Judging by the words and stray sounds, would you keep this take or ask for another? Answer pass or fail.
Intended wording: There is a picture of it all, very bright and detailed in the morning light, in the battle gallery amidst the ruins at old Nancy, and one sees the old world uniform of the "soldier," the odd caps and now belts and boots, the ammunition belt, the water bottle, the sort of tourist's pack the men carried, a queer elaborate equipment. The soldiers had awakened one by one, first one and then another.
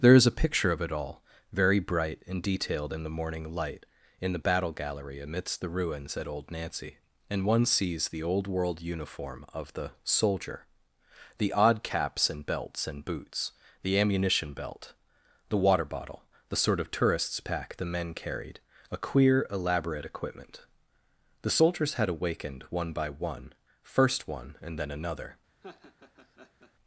fail